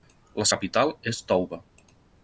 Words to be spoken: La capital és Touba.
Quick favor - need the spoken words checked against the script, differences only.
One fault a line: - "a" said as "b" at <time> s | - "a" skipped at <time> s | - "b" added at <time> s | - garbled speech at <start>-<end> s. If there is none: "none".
none